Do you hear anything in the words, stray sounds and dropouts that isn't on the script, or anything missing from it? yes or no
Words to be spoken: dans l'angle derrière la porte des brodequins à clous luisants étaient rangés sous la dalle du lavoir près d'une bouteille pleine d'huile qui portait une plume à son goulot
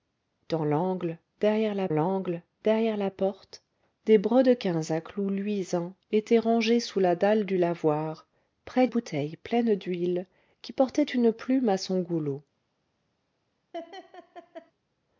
yes